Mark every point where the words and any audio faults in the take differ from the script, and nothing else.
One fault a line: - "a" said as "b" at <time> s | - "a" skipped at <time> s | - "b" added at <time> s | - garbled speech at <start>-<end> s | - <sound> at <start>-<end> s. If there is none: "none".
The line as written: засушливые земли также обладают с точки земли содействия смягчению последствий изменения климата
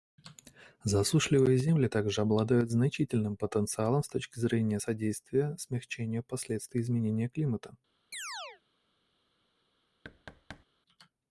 - "значительным потенциалом" added at 2.7 s
- "земли" said as "зрения" at 4.4 s
- chirp at 8.1-8.6 s
- thud at 10.0-10.7 s